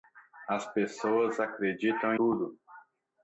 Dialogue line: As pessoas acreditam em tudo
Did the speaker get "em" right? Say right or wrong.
wrong